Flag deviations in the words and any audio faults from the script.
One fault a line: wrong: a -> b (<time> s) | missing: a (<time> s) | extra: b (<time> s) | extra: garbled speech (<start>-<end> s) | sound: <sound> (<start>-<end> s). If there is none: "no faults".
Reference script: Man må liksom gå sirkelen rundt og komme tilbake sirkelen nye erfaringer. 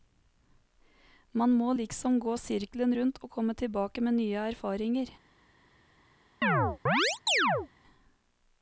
wrong: sirkelen -> med (4.0 s)
sound: chirp (6.4-7.7 s)